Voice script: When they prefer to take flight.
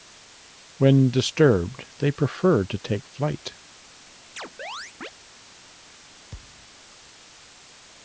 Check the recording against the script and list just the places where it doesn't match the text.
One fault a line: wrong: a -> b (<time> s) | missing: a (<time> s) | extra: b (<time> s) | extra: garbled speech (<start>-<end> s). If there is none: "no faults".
extra: disturbed (1.1 s)